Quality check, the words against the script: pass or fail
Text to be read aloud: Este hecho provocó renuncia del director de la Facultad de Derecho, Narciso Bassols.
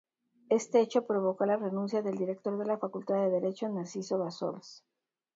fail